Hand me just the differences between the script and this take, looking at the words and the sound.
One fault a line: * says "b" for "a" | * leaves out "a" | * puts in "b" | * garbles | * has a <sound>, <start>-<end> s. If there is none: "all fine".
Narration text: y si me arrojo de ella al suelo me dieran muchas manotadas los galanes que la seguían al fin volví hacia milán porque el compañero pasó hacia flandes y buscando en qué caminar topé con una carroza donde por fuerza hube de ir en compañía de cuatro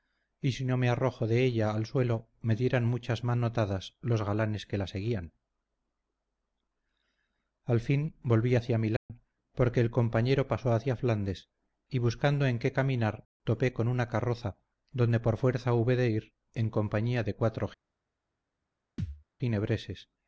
* puts in "no"
* has a dropout, 9.0-9.1 s
* has a thud, 19.0-19.2 s